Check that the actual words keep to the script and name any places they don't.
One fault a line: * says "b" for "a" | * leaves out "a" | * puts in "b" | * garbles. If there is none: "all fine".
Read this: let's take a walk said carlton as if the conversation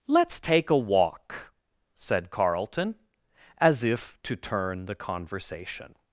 * puts in "to turn"